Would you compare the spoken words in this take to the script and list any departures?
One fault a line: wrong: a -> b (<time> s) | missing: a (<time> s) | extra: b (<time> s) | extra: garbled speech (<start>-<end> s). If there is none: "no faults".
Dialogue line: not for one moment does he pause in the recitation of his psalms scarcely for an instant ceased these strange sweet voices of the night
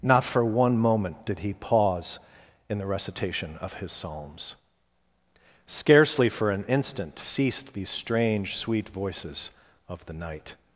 wrong: does -> did (1.2 s)